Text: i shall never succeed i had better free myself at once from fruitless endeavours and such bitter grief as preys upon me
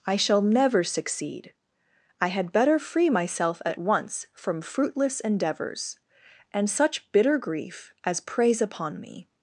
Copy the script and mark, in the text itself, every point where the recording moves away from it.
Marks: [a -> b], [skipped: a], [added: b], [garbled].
i shall never succeed i had better free myself at once from fruitless endeavours and such bitter grief as preys upon me